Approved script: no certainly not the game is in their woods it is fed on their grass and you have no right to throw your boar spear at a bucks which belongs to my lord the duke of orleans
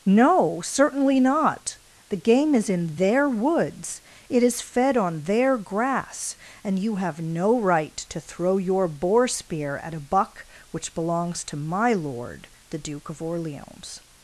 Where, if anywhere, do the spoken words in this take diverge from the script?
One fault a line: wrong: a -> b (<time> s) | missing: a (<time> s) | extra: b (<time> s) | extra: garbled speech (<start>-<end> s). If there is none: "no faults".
wrong: bucks -> buck (10.0 s)